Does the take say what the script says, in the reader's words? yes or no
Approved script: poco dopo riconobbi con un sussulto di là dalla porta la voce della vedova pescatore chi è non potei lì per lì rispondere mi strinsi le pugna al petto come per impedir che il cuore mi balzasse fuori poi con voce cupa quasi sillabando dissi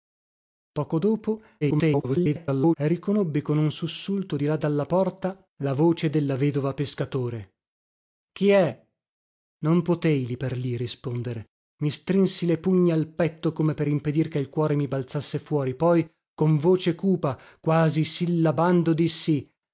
no